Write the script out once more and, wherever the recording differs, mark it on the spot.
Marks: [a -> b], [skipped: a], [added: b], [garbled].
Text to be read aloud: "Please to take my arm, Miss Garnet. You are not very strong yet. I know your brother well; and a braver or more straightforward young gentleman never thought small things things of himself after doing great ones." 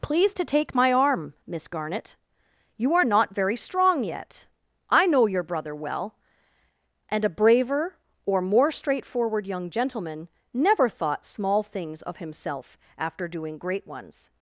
"Please to take my arm, Miss Garnet. You are not very strong yet. I know your brother well; and a braver or more straightforward young gentleman never thought small things [skipped: things] of himself after doing great ones."